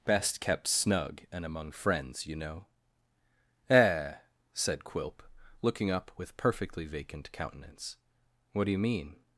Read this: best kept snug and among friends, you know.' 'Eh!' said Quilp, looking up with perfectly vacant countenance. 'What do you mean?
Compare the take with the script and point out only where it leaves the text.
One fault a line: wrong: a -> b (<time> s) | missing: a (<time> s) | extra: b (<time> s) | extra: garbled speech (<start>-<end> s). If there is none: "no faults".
no faults